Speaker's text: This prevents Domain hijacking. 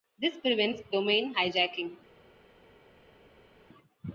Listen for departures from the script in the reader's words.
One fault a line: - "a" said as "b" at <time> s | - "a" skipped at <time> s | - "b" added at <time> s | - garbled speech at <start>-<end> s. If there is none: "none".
none